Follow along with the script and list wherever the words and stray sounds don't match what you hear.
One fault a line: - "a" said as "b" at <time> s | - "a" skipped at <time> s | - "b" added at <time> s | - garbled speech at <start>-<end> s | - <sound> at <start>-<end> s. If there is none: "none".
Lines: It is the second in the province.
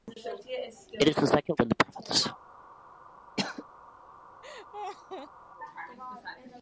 - cough at 3.4-3.6 s
- laugh at 4.4-5.3 s